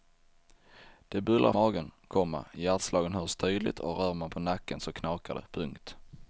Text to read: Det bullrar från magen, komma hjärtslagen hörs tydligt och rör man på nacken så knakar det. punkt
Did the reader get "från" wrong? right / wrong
wrong